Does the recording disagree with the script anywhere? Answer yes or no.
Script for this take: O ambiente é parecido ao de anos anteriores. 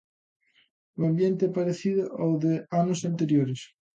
no